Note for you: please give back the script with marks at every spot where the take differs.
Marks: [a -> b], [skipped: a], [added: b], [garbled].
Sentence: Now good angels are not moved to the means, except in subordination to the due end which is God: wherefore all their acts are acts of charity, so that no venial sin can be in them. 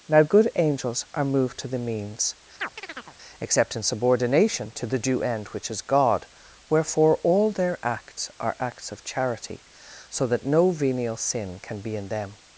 Now good angels are [skipped: not] moved to the means, except in subordination to the due end which is God: wherefore all their acts are acts of charity, so that no venial sin can be in them.